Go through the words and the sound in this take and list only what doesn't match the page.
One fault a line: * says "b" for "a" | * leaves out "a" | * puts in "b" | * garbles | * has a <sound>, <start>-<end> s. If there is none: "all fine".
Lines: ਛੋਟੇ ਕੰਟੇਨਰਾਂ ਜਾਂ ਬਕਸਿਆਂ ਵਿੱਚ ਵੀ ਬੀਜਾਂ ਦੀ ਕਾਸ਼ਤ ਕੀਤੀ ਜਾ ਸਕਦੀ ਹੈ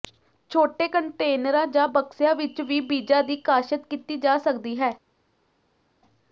all fine